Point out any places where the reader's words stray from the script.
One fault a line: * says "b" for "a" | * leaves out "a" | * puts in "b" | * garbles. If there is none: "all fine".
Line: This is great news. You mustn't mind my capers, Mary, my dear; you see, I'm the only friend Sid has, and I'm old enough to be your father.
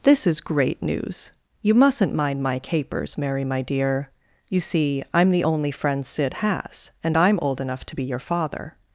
all fine